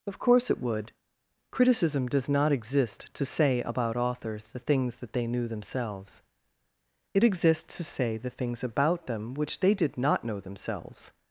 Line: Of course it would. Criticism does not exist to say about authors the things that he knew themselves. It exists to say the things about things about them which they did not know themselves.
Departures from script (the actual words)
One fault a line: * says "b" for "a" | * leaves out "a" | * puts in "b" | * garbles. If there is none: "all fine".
* says "they" for "he"
* leaves out "things about"